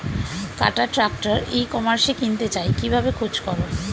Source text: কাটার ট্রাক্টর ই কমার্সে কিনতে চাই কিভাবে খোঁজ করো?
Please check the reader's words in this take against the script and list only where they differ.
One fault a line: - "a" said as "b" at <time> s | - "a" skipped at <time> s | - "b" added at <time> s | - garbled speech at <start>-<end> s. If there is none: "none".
none